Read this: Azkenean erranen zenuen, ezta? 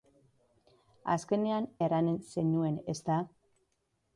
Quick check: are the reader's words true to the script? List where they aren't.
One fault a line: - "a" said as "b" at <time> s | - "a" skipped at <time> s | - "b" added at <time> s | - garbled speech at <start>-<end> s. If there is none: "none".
none